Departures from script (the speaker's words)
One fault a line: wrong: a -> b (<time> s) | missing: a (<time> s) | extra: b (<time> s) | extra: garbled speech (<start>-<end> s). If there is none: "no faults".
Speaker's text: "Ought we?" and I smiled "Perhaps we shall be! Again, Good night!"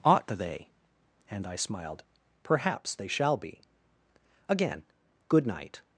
wrong: we -> they (0.3 s)
wrong: we -> they (3.0 s)